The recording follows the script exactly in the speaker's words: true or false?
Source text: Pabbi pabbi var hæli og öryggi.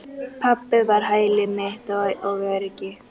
false